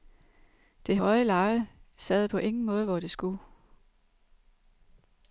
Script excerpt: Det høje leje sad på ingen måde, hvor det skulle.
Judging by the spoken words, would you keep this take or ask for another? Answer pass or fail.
pass